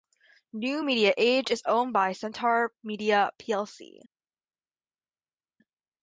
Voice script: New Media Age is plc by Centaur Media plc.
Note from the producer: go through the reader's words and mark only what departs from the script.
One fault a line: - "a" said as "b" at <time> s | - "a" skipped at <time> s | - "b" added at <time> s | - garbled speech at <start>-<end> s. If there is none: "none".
- "plc" said as "owned" at 1.7 s